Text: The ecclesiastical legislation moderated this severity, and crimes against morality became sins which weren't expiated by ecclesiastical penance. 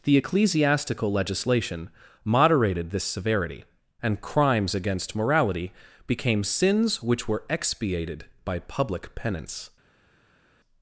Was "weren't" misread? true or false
true